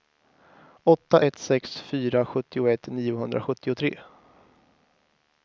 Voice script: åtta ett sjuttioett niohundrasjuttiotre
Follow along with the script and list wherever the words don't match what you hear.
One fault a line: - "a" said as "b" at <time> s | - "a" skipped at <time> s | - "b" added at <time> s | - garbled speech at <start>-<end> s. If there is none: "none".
- "sex fyra" added at 1.4 s